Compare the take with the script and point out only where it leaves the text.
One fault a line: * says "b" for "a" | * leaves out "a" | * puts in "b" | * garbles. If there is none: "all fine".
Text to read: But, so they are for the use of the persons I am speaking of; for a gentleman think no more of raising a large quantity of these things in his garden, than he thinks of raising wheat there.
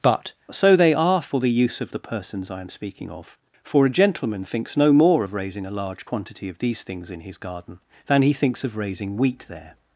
* says "thinks" for "think"